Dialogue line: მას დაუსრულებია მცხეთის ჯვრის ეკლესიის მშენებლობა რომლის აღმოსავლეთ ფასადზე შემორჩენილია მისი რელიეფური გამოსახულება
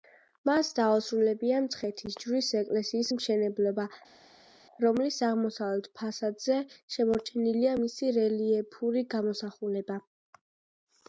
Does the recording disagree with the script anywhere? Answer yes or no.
no